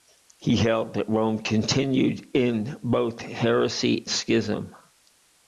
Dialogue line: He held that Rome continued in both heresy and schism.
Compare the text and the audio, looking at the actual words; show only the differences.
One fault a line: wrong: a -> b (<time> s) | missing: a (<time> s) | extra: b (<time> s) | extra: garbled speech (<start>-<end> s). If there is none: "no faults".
missing: and (4.1 s)